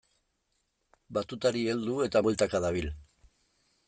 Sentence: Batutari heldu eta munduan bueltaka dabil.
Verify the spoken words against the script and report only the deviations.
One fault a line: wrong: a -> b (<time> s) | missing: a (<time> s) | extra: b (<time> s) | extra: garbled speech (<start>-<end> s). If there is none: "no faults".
missing: munduan (2.2 s)